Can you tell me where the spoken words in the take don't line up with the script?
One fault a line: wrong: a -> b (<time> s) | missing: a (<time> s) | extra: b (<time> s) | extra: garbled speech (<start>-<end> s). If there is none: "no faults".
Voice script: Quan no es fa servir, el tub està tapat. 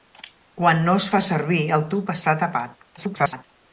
extra: garbled speech (3.0-3.4 s)